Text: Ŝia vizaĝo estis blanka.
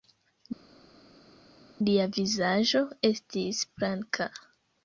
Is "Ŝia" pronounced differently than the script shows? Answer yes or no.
yes